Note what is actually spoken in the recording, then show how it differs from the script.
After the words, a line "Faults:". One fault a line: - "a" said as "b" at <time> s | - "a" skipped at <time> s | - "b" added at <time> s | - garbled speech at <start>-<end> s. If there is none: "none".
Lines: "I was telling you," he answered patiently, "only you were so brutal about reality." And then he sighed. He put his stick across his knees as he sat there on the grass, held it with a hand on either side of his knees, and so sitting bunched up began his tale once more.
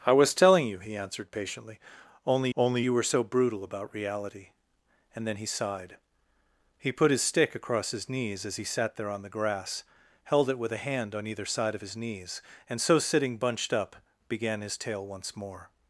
"I was telling you," he answered patiently, "only only you were so brutal about reality." And then he sighed. He put his stick across his knees as he sat there on the grass, held it with a hand on either side of his knees, and so sitting bunched up began his tale once more.
Faults:
- "only" added at 2.6 s